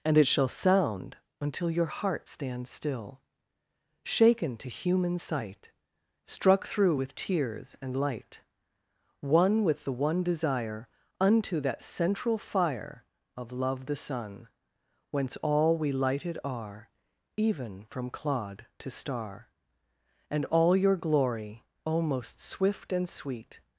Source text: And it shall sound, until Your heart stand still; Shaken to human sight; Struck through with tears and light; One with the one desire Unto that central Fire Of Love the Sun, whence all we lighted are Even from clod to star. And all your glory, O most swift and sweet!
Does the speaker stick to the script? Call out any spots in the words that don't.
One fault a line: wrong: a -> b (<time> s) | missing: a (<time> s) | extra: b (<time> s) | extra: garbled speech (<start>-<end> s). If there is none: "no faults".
no faults